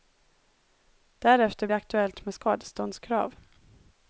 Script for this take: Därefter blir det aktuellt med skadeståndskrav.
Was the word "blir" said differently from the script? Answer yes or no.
yes